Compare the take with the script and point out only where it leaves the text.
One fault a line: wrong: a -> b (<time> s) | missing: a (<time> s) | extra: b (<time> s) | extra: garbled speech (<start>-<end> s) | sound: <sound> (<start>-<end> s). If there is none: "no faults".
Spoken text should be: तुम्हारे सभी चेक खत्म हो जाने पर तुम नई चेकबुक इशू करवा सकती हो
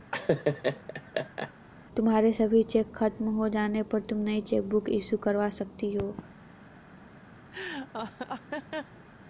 sound: laugh (0.1-1.5 s)
sound: laugh (7.5-9.0 s)